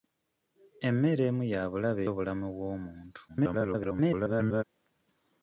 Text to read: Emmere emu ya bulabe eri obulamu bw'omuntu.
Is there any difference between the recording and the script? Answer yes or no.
yes